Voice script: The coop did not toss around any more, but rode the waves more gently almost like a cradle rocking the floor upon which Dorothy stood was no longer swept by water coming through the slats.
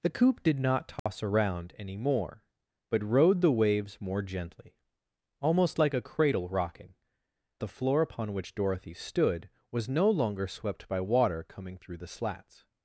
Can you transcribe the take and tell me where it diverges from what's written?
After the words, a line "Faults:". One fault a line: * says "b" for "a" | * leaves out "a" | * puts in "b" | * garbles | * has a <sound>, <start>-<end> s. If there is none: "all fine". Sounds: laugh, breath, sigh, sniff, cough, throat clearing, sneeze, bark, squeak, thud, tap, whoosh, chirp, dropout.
The coop did not toss around any more, but rode the waves more gently almost like a cradle rocking the floor upon which Dorothy stood was no longer swept by water coming through the slats.
Faults:
* has a dropout, 1.0-1.1 s